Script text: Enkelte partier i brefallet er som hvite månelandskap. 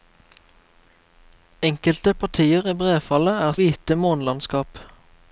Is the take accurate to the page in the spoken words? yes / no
no